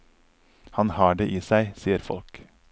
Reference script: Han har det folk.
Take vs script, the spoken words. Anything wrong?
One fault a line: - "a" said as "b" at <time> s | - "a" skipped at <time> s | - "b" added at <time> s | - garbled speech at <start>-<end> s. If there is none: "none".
- "i seg sier" added at 1.3 s